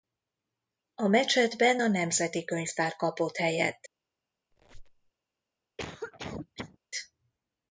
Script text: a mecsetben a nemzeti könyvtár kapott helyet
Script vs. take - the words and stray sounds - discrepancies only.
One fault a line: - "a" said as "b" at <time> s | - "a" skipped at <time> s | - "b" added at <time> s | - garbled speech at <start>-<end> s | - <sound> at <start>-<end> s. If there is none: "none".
- squeak at 4.5-5.1 s
- cough at 5.8-6.8 s